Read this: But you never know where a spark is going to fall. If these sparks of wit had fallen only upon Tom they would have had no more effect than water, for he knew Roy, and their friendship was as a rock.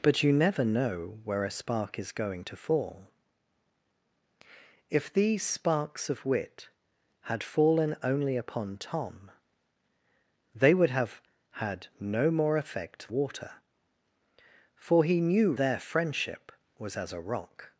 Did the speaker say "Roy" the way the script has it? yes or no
no